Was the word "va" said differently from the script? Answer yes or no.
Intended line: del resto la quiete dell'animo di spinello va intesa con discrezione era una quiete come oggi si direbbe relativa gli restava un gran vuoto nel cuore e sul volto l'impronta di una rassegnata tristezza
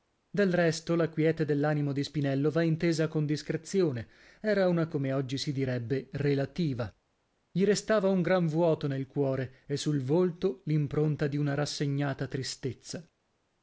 no